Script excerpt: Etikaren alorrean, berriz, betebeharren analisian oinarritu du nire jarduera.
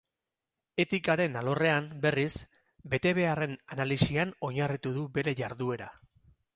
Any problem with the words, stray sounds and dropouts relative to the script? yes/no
yes